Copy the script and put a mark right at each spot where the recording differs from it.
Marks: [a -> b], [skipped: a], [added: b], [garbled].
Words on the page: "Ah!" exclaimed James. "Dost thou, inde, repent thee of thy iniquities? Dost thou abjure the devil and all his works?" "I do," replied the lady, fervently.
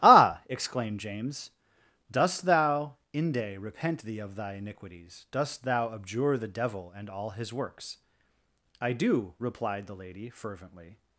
"Ah!" exclaimed James. "Dost thou, inde, repent thee of thy iniquities? Dost thou abjure the devil and all his works?" "I do," replied the lady, fervently.